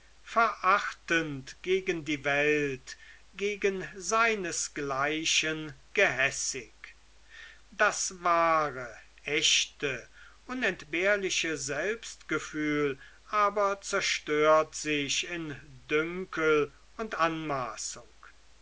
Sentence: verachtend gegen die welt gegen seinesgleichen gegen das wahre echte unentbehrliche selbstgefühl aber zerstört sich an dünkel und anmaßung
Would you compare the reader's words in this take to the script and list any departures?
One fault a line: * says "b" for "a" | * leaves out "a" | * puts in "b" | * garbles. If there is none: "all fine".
* says "gehässig" for "gegen"
* says "in" for "an"